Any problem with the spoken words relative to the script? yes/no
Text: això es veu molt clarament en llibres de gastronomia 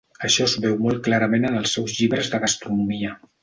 yes